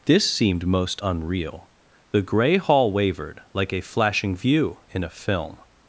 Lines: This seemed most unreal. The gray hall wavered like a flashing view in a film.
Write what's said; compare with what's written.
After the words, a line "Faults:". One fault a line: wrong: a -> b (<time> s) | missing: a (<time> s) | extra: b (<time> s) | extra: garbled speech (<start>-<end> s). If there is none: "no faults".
This seemed most unreal. The gray hall wavered like a flashing view in a film.
Faults:
no faults